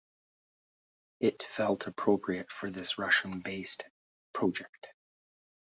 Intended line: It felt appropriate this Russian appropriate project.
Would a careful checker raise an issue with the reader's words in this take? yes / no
yes